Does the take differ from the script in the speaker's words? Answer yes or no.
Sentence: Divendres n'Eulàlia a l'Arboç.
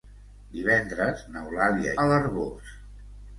no